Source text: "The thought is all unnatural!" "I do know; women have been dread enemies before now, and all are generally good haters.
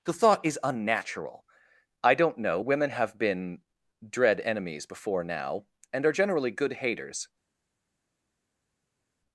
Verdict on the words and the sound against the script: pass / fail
fail